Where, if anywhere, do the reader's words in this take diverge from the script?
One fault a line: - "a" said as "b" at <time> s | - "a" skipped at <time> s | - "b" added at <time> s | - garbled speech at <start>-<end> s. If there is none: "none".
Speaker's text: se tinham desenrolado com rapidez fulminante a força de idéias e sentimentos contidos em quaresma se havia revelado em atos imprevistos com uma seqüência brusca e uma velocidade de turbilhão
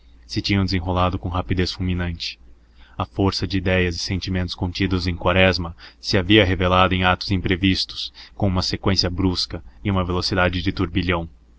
none